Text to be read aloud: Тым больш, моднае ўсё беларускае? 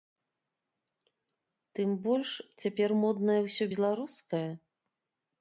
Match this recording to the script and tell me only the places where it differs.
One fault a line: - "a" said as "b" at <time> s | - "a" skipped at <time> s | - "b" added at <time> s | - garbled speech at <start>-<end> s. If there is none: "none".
- "цяпер" added at 2.6 s